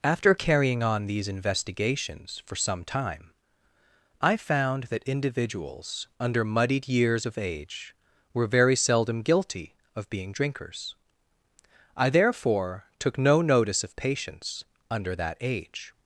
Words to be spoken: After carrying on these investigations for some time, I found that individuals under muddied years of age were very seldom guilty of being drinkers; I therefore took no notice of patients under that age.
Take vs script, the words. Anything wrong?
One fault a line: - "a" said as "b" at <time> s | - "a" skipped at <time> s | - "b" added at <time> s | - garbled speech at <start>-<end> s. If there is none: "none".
none